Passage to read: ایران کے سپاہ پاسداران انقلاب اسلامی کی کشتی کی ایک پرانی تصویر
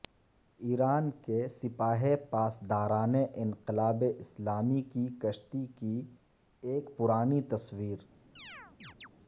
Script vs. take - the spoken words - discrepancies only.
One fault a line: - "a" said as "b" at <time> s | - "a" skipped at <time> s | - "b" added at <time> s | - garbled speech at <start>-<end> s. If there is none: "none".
none